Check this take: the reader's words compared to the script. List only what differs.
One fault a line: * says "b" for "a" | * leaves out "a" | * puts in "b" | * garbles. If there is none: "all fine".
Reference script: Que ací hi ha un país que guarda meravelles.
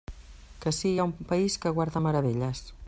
all fine